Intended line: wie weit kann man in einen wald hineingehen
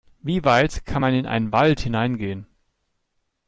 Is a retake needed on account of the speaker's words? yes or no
no